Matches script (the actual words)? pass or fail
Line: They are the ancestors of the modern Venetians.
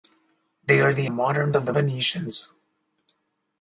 fail